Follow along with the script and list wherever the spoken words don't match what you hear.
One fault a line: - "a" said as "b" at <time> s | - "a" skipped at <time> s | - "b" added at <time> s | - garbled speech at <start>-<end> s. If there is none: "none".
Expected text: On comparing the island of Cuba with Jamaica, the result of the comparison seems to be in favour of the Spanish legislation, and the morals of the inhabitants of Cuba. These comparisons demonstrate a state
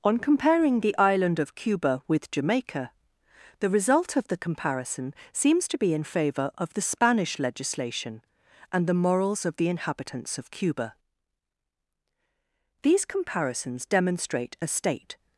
none